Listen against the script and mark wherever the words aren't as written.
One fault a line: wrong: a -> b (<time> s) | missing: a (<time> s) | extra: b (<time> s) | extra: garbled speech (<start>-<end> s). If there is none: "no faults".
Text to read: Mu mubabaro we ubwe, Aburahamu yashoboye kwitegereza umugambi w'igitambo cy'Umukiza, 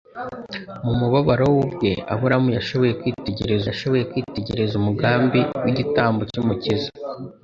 extra: yashoboye kwitegereza (3.7 s)